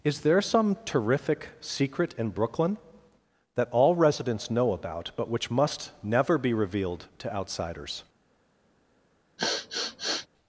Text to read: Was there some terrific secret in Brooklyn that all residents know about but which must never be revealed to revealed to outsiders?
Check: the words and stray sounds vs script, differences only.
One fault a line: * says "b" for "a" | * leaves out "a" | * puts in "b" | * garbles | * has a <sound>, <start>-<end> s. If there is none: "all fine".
* says "Is" for "Was"
* leaves out "revealed to"
* has a sniff, 9.4-10.3 s